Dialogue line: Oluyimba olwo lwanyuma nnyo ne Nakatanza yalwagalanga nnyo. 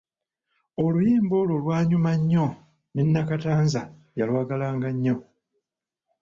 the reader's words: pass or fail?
pass